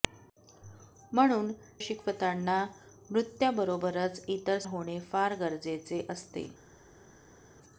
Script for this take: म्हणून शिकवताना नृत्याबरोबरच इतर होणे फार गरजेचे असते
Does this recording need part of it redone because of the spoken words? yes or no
no